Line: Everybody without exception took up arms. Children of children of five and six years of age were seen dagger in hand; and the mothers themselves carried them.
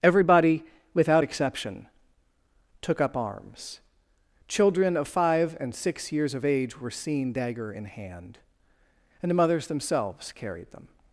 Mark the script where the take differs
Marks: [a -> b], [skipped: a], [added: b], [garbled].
Everybody without exception took up arms. Children of [skipped: children of] five and six years of age were seen dagger in hand; and the mothers themselves carried them.